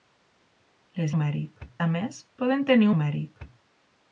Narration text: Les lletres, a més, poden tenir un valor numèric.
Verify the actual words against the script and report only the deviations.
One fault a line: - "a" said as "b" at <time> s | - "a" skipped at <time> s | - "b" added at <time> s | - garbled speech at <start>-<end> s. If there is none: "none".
- "lletres" said as "numèric" at 1.1 s
- "un valor" skipped at 2.9 s